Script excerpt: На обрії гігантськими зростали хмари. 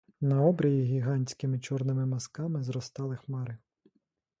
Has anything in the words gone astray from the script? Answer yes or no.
yes